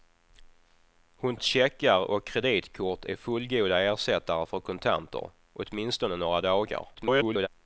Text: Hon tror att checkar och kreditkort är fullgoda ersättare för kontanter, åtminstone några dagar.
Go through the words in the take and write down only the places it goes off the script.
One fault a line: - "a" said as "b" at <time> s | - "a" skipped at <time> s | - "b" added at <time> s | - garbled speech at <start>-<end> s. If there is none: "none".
- "tror" skipped at 1.4 s
- garbled speech at 6.9-7.5 s